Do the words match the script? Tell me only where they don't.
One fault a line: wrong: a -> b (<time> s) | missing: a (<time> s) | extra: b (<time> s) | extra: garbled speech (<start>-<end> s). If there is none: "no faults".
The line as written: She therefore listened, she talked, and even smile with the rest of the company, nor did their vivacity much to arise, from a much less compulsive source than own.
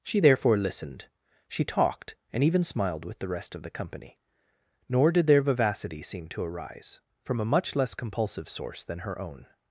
wrong: smile -> smiled (2.6 s)
wrong: much -> seem (6.0 s)
extra: her (9.0 s)